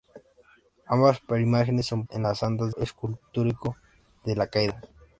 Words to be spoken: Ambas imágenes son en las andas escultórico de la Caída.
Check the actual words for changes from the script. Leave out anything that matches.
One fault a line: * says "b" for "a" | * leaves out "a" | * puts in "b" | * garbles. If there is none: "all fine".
all fine